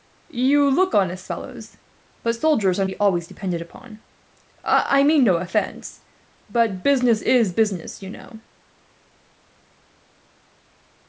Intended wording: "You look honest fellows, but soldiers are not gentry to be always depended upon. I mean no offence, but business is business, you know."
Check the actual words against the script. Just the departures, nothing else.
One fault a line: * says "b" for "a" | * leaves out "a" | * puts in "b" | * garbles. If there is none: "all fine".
* leaves out "not gentry to"